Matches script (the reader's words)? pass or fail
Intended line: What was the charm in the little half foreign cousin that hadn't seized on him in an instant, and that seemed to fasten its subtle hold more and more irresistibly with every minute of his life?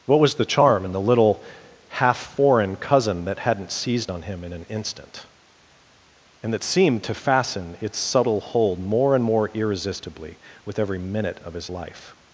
pass